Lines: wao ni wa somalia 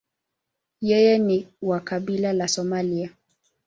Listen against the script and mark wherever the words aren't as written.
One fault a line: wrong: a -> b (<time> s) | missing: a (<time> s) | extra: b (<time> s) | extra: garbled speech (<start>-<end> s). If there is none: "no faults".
wrong: wao -> yeye (0.8 s)
extra: kabila la (1.8 s)